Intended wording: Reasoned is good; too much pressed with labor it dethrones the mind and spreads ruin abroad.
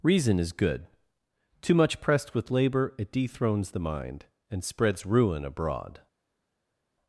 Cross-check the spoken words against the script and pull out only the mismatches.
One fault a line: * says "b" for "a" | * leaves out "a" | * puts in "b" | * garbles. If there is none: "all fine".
* says "Reason" for "Reasoned"